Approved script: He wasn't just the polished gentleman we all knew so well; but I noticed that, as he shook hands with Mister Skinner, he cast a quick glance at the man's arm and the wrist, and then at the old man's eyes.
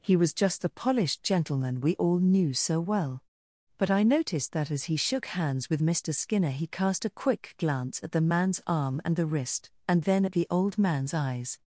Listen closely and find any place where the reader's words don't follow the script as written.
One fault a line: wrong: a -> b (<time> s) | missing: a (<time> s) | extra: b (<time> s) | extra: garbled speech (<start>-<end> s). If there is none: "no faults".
wrong: wasn't -> was (0.1 s)